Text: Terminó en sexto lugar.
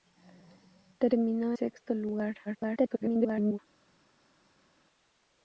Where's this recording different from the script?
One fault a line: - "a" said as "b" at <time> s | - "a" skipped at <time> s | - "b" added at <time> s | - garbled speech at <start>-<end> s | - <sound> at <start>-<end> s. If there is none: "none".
- "en" skipped at 1.5 s
- garbled speech at 2.5-3.6 s